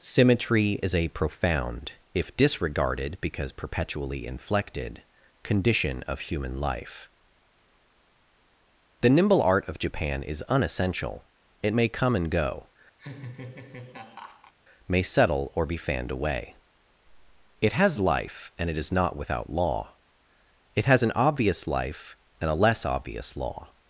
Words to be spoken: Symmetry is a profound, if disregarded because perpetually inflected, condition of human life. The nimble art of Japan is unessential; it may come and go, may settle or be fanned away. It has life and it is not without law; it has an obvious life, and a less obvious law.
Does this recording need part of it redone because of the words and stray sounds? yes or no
yes